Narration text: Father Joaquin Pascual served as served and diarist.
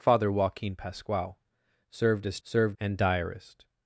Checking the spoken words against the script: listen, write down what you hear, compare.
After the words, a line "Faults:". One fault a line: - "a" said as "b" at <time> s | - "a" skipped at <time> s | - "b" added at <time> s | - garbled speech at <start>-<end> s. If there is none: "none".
Father Joaquin Pascual served as served and diarist.
Faults:
none